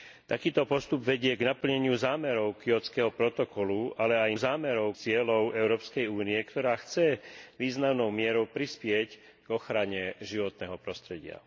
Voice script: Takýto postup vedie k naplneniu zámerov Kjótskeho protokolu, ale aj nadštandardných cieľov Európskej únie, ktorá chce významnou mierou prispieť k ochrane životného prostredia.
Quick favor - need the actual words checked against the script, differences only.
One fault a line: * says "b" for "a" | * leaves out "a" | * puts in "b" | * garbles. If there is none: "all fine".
* says "zámerov" for "nadštandardných"